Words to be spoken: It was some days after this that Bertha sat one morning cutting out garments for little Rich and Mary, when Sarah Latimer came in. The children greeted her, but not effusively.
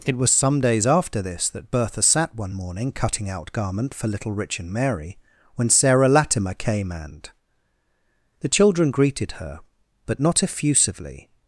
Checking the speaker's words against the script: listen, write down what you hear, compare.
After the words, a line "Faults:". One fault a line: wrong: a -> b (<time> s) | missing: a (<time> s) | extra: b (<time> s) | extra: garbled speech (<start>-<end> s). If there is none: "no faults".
It was some days after this that Bertha sat one morning cutting out garment for little Rich and Mary, when Sarah Latimer came and. The children greeted her, but not effusively.
Faults:
wrong: garments -> garment (3.5 s)
wrong: in -> and (6.9 s)